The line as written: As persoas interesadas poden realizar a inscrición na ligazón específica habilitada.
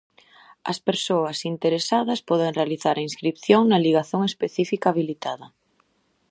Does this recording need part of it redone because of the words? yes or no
no